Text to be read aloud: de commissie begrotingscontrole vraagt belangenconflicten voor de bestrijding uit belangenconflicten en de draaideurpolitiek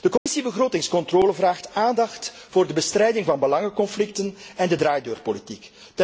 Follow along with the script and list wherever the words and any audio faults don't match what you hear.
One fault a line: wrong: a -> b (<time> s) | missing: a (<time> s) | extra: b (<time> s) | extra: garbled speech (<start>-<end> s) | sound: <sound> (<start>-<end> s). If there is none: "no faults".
sound: dropout (0.2-0.3 s)
wrong: belangenconflicten -> aandacht (1.7 s)
wrong: uit -> van (3.3 s)